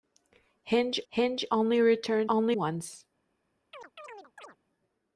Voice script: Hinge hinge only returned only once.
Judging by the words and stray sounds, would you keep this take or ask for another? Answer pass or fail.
fail